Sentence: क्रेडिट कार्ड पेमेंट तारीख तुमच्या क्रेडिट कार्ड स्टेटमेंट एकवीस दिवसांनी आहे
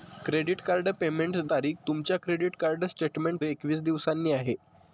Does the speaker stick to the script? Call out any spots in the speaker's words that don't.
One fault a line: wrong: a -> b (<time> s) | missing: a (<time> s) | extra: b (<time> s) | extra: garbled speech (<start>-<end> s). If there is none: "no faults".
no faults